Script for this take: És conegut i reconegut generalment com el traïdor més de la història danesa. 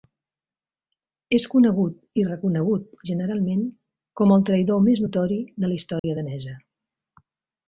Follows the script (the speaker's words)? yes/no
no